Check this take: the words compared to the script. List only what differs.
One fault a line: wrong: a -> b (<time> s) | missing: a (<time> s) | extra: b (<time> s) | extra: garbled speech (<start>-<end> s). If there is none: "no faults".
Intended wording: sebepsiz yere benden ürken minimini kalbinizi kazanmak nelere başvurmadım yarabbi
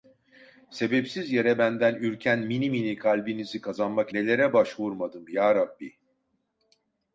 no faults